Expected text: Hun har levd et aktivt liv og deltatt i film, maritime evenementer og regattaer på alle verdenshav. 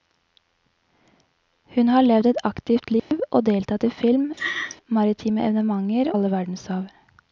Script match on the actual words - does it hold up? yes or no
no